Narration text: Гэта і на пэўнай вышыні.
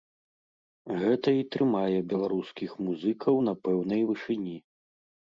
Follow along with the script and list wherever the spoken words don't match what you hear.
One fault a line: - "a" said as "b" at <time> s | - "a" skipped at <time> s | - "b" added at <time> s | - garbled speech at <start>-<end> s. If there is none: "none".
- "трымае беларускіх музыкаў" added at 1.6 s